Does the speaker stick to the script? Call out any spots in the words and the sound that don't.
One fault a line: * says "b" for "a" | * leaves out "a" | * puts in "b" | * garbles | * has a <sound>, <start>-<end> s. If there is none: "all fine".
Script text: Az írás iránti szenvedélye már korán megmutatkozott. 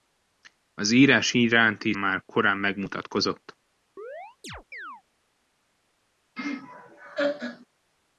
* leaves out "szenvedélye"
* has a chirp, 4.0-5.0 s
* has a laugh, 6.4-7.7 s